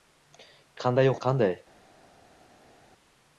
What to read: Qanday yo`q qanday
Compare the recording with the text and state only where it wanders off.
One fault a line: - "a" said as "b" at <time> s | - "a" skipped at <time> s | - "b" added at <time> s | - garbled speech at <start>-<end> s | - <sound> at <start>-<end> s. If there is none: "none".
none